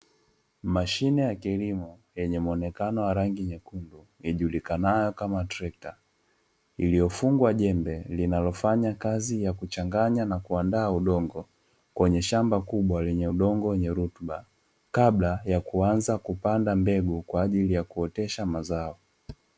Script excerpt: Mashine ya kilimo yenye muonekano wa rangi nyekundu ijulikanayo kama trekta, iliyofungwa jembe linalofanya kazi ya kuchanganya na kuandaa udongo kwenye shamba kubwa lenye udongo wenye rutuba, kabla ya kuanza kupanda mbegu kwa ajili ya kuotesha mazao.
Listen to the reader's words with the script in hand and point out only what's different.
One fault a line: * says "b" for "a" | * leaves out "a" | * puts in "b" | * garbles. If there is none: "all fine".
all fine